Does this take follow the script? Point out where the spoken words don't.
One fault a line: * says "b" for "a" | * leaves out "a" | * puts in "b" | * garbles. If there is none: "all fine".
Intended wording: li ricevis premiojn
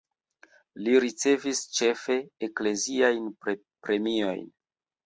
* puts in "ĉefe ekleziajn"